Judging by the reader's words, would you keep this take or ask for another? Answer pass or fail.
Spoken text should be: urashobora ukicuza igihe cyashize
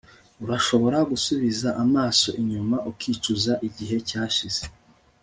fail